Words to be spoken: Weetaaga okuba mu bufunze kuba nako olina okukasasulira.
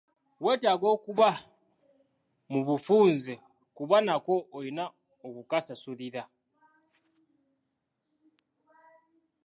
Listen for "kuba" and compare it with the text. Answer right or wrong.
right